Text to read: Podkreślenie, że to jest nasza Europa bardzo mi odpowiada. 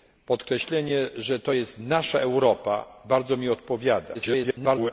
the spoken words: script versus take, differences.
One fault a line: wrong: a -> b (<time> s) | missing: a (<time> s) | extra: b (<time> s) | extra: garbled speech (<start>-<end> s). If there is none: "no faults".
extra: garbled speech (4.1-4.9 s)